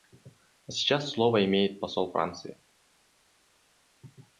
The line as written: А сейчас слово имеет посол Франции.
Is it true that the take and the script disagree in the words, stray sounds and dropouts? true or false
false